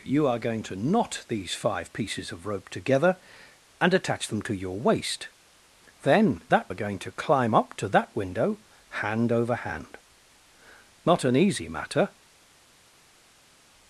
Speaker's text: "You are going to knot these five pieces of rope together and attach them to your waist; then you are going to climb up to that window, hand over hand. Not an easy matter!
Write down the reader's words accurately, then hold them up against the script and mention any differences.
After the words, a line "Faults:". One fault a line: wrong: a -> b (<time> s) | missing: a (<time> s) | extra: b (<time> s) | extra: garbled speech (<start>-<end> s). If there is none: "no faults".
"You are going to knot these five pieces of rope together and attach them to your waist; then that are going to climb up to that window, hand over hand. Not an easy matter!
Faults:
wrong: you -> that (6.5 s)